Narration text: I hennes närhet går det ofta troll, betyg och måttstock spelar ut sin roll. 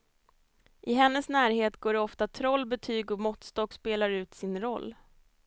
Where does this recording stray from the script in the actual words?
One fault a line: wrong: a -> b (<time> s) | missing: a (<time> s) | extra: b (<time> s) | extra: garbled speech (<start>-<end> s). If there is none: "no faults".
no faults